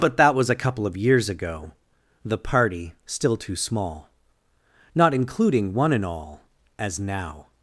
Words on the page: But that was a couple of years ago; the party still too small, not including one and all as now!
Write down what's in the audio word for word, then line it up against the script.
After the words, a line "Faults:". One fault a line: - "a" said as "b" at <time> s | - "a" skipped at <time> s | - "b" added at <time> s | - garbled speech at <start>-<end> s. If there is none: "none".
But that was a couple of years ago; the party still too small, not including one and all as now!
Faults:
none